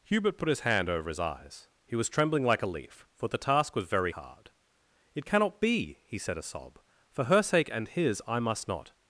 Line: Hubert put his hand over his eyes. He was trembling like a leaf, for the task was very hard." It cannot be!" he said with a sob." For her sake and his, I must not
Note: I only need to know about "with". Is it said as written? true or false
false